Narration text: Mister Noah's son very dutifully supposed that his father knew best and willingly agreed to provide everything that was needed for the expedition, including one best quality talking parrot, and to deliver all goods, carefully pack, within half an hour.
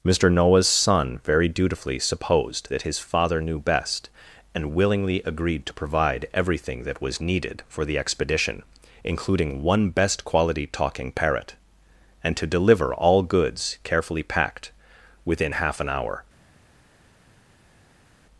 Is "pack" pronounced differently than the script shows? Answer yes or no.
yes